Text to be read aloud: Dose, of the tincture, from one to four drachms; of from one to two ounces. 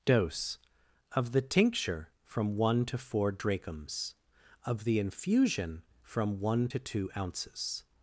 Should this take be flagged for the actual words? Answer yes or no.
yes